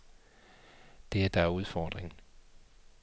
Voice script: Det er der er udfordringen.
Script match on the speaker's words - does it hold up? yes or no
yes